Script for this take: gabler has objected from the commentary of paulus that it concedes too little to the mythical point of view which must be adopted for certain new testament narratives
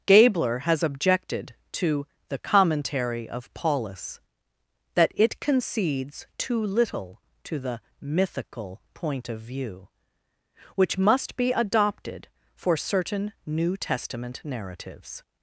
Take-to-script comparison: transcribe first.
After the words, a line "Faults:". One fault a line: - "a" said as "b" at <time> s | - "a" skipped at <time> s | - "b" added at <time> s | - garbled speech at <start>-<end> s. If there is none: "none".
gabler has objected to the commentary of paulus that it concedes too little to the mythical point of view which must be adopted for certain new testament narratives
Faults:
- "from" said as "to" at 1.7 s